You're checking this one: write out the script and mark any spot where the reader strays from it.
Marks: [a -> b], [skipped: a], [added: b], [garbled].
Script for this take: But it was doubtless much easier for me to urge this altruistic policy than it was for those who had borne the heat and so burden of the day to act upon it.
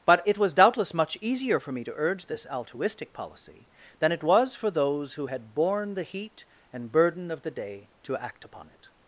But it was doubtless much easier for me to urge this altruistic policy than it was for those who had borne the heat and [skipped: so] burden of the day to act upon it.